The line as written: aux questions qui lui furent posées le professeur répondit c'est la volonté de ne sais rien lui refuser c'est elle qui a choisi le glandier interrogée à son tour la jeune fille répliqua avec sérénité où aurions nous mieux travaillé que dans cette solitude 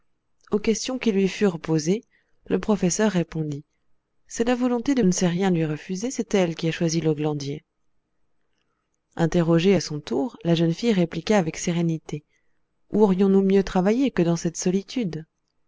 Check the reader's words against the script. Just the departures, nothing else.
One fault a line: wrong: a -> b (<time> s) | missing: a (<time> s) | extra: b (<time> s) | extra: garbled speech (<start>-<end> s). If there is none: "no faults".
no faults